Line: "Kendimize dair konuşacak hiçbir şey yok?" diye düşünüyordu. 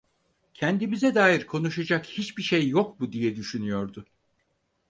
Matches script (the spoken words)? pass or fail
fail